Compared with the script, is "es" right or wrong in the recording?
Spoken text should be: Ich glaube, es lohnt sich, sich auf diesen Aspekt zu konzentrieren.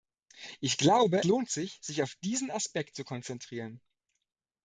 wrong